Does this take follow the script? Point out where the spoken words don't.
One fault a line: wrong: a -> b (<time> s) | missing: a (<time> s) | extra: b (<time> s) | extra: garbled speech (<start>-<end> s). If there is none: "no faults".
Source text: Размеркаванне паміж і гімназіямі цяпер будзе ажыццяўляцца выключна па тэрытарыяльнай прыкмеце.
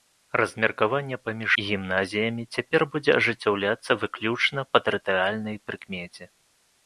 no faults